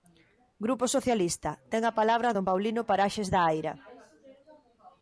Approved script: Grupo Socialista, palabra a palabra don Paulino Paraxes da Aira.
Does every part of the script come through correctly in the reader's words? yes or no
no